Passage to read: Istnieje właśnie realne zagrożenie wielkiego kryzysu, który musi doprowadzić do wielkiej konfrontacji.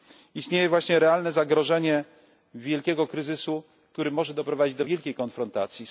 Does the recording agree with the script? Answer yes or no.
no